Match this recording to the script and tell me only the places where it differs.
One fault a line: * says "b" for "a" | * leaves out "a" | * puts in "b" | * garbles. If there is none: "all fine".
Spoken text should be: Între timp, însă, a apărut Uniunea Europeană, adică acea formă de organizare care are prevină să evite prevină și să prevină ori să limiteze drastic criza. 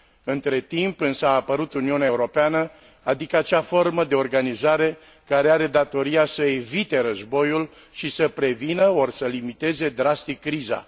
* says "datoria" for "prevină"
* says "războiul" for "prevină"